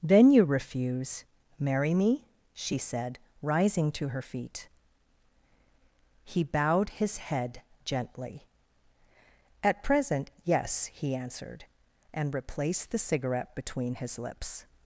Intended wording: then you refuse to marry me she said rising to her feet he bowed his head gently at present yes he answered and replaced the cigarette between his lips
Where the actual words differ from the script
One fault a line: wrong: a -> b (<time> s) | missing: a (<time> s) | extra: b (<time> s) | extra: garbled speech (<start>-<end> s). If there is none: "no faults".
missing: to (1.2 s)